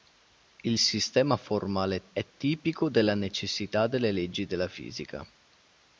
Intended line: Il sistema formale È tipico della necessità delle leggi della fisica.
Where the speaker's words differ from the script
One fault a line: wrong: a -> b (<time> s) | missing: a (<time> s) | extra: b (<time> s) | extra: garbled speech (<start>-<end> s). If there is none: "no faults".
no faults